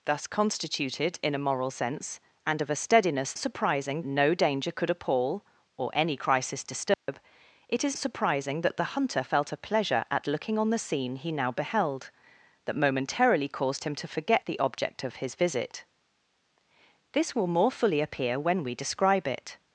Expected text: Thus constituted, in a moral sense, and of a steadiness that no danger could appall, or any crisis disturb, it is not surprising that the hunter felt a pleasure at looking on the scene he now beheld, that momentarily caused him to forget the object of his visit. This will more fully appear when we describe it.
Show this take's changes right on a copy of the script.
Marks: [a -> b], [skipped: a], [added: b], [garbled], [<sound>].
Thus constituted, in a moral sense, and of a steadiness [that -> surprising] no danger could appall, or any crisis disturb, [dropout] it is [skipped: not] surprising that the hunter felt a pleasure at looking on the scene he now beheld, that momentarily caused him to forget the object of his visit. This will more fully appear when we describe it.